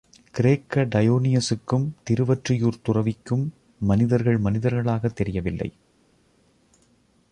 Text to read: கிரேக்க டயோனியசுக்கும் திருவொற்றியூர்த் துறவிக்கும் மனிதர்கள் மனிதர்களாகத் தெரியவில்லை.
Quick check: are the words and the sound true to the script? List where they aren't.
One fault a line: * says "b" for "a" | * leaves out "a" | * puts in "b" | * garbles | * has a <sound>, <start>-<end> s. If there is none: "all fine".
all fine